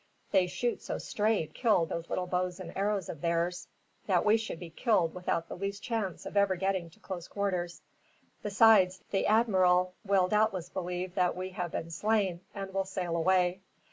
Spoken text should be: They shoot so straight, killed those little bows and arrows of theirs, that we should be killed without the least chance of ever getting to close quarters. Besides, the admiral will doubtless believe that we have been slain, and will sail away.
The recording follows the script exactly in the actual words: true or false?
true